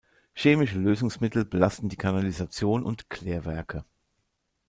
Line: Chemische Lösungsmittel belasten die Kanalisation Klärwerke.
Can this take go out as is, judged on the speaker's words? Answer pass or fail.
fail